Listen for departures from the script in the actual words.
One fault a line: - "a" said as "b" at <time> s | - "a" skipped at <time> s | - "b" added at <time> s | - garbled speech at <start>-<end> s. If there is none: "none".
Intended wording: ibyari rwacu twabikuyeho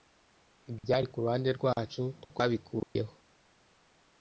- "kuruhande" added at 1.1 s